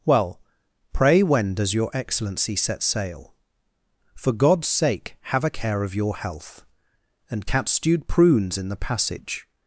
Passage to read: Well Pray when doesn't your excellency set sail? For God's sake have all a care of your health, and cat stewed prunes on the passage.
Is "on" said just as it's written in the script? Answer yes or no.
no